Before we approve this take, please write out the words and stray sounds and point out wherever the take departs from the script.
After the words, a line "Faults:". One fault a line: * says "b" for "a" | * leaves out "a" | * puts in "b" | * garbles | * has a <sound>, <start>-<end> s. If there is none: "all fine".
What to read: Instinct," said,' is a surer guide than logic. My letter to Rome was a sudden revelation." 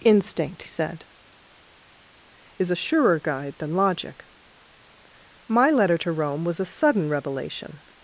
Instinct," said,' is a surer guide than logic. My letter to Rome was a sudden revelation."
Faults:
all fine